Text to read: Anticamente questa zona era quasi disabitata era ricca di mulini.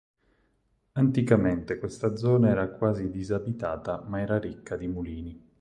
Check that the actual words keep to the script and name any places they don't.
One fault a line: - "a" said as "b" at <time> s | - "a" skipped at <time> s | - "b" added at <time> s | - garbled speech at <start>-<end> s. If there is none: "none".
- "ma" added at 4.1 s